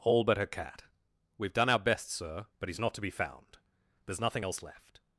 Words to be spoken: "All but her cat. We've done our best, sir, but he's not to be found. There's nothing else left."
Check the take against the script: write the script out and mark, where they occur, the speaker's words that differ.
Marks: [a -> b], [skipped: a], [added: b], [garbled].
"All but her cat. We've done our best, sir, but he's not to be found. There's nothing else left."